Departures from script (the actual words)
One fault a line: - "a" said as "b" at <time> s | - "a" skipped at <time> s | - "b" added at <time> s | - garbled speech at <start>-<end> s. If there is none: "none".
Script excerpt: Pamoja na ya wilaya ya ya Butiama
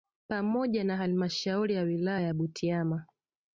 - "halmashauri" added at 1.0 s
- "ya" skipped at 2.3 s